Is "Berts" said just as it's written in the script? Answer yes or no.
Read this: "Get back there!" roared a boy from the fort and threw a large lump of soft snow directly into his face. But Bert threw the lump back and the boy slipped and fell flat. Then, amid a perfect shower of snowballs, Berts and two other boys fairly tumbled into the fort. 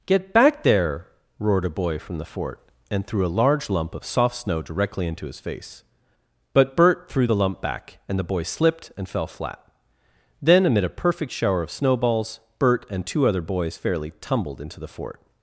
no